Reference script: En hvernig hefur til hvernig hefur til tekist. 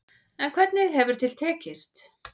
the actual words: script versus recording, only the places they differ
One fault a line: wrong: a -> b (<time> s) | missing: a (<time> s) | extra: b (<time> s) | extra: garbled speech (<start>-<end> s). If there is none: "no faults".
missing: hvernig hefur til (1.4 s)